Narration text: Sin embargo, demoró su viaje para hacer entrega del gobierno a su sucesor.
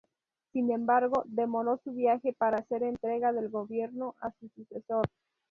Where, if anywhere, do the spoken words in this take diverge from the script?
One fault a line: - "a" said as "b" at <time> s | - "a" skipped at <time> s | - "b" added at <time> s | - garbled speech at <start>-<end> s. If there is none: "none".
none